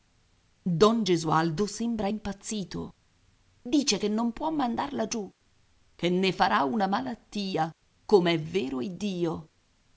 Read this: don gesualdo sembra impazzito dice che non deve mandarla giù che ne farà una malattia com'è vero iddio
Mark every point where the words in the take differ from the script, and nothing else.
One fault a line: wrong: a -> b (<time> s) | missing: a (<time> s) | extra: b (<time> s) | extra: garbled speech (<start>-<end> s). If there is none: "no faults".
wrong: deve -> può (4.3 s)